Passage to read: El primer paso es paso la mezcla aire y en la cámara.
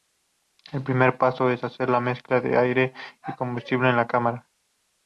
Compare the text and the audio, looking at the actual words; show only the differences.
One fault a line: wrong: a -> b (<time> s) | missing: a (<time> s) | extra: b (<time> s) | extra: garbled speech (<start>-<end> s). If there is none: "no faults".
wrong: paso -> hacer (1.7 s)
extra: de (2.4 s)
extra: combustible (3.4 s)